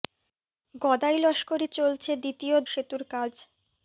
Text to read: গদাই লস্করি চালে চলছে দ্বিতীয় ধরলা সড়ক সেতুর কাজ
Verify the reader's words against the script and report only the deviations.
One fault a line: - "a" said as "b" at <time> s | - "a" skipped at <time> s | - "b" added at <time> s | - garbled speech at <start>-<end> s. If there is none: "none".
- "চালে" skipped at 1.7 s
- "ধরলা সড়ক" skipped at 2.6 s